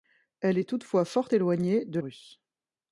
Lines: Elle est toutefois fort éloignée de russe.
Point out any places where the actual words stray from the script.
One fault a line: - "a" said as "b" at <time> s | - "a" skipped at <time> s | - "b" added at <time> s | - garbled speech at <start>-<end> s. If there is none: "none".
none